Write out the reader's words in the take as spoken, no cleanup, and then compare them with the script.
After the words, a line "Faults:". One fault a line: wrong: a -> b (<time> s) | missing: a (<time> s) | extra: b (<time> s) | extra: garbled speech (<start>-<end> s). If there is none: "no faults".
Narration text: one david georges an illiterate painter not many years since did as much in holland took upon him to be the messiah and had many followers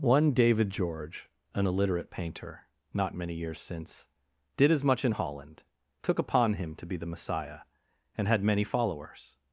one david george an illiterate painter not many years since did as much in holland took upon him to be the messiah and had many followers
Faults:
wrong: georges -> george (0.7 s)